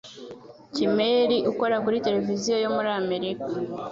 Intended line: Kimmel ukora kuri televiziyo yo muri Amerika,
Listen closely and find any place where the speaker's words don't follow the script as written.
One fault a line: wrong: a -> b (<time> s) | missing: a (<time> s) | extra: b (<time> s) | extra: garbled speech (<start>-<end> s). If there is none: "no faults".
no faults